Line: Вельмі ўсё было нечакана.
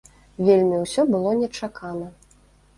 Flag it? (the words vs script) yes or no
no